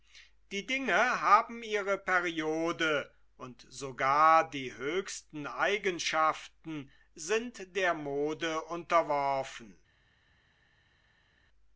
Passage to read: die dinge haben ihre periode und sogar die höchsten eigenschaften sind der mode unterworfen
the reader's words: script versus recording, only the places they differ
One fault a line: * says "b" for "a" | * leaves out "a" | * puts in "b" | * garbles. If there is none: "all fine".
all fine